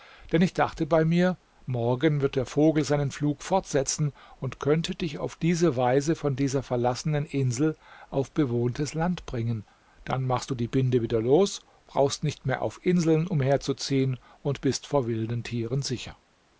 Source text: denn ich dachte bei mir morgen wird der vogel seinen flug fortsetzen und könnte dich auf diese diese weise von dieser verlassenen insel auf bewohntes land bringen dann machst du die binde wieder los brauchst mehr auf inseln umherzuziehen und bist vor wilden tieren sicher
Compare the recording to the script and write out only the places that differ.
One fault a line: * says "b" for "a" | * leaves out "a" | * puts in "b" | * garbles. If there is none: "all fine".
* leaves out "diese"
* puts in "nicht"